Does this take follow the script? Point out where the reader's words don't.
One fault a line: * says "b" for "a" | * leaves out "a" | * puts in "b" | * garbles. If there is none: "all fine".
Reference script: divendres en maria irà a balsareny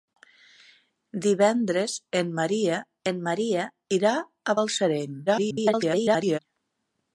* puts in "en maria"
* garbles